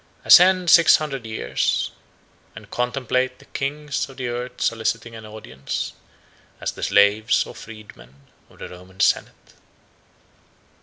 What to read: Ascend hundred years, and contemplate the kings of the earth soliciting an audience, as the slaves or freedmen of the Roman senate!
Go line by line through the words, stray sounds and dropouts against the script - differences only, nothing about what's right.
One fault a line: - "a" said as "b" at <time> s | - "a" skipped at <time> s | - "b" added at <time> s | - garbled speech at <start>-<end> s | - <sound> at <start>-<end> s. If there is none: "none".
- "six" added at 0.7 s